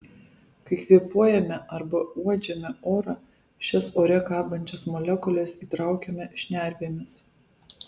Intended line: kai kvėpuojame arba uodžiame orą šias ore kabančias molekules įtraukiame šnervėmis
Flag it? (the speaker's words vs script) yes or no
no